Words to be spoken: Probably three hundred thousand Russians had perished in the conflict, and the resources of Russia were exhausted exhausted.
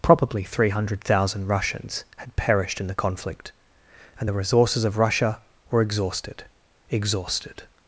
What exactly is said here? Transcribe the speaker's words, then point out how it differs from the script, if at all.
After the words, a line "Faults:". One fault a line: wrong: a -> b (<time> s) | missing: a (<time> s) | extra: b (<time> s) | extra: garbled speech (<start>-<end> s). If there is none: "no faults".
Probably three hundred thousand Russians had perished in the conflict, and the resources of Russia were exhausted exhausted.
Faults:
no faults